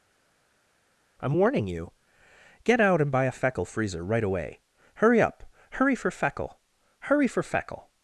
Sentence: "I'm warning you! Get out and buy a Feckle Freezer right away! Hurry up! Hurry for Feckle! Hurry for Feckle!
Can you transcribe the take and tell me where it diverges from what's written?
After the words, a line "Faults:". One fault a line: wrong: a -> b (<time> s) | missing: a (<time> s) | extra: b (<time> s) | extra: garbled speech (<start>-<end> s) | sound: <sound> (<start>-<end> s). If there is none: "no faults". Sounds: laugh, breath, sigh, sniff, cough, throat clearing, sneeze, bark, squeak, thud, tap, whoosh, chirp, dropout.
"I'm warning you! Get out and buy a Feckle Freezer right away! Hurry up! Hurry for Feckle! Hurry for Feckle!
Faults:
no faults